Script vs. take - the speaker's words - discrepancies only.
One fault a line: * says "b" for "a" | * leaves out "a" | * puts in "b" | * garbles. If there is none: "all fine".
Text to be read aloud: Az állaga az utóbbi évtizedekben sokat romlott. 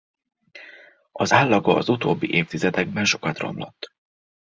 all fine